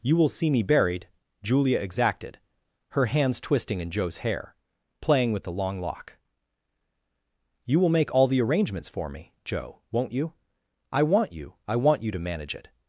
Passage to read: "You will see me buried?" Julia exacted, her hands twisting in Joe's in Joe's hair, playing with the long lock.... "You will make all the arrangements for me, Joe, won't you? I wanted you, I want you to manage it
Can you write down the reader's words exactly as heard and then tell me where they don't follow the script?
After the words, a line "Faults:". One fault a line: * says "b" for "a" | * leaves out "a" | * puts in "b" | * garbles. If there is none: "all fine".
"You will see me buried?" Julia exacted, her hands twisting in Joe's hair, playing with the long lock.... "You will make all the arrangements for me, Joe, won't you? I want you, I want you to manage it
Faults:
* leaves out "in Joe's"
* says "want" for "wanted"